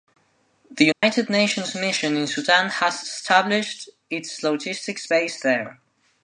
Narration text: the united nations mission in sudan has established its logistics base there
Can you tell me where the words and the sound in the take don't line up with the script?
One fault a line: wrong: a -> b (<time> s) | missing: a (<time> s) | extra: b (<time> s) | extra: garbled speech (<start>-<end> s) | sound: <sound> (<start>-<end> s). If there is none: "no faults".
sound: dropout (0.9-1.0 s)